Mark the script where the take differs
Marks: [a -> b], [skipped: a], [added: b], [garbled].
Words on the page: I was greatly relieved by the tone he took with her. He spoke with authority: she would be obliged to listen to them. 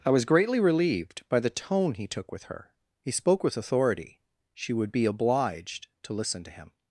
I was greatly relieved by the tone he took with her. He spoke with authority: she would be obliged to listen to [them. -> him]